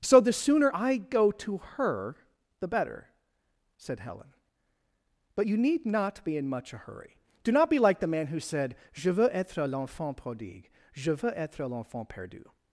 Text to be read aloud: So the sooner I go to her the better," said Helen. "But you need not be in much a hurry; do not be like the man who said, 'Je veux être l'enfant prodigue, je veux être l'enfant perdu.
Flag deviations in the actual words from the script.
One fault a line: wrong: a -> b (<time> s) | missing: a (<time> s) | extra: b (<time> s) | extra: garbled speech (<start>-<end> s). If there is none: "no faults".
no faults